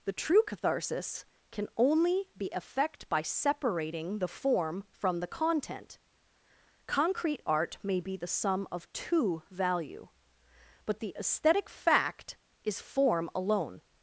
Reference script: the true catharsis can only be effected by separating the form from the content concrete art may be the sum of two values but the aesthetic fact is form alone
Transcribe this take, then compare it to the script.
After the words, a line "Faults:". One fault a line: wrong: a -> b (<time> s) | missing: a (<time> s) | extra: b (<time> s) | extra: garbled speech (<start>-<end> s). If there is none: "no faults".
the true catharsis can only be effect by separating the form from the content concrete art may be the sum of two value but the aesthetic fact is form alone
Faults:
wrong: effected -> effect (2.5 s)
wrong: values -> value (9.5 s)